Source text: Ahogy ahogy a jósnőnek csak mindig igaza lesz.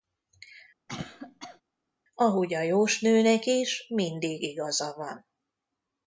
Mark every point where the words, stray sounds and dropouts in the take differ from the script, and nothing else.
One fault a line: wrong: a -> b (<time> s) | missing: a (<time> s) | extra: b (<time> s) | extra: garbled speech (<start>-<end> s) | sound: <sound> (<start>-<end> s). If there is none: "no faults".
sound: cough (0.9-1.6 s)
missing: ahogy (2.5 s)
wrong: csak -> is (3.5 s)
wrong: lesz -> van (5.0 s)